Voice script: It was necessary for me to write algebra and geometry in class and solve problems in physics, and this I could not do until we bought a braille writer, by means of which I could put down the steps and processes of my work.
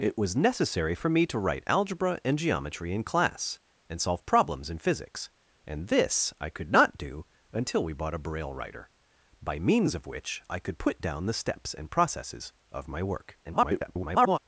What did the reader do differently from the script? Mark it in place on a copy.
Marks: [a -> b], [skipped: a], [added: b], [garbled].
It was necessary for me to write algebra and geometry in class and solve problems in physics, and this I could not do until we bought a braille writer, by means of which I could put down the steps and processes of my work. [garbled]